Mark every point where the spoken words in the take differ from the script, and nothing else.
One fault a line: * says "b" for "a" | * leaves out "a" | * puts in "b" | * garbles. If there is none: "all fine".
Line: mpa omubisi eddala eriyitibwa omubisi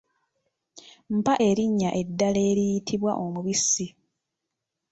* says "erinnya" for "omubisi"